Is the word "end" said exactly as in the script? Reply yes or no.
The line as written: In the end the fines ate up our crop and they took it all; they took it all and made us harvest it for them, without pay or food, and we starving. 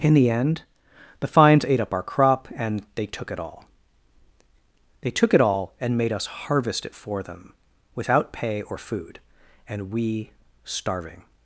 yes